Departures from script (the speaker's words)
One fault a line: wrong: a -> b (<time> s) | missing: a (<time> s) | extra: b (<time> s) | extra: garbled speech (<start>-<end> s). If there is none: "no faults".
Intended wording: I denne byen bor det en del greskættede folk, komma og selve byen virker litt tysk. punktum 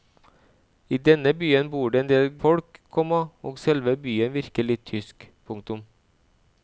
missing: greskættede (2.3 s)